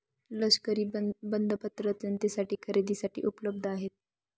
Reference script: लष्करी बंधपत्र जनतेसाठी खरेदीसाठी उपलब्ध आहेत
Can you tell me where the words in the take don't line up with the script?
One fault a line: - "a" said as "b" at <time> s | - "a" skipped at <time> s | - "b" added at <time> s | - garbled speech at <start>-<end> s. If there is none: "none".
none